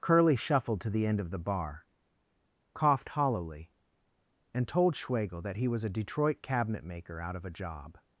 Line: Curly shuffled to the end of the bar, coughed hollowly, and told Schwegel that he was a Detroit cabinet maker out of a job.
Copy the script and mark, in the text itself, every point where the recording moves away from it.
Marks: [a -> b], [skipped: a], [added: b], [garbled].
Curly shuffled to the end of the bar, coughed hollowly, and told Schwegel that he was a Detroit cabinet maker out of a job.